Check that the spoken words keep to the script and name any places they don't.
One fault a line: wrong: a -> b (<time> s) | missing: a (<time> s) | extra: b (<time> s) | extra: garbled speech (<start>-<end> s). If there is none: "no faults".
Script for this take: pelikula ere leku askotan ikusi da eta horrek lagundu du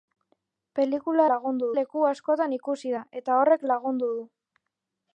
wrong: ere -> lagundu (1.3 s)